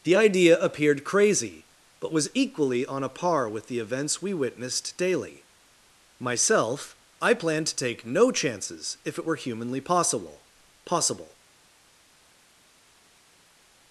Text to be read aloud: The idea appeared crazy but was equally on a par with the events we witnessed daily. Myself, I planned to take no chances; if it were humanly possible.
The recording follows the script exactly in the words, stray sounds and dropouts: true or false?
false